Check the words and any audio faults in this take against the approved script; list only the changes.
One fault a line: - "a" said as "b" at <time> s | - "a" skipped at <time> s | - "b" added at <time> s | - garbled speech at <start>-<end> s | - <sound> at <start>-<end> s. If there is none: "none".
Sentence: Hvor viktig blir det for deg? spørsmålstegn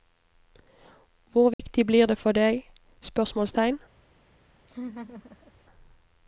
- dropout at 1.5-1.6 s
- laugh at 4.7-5.5 s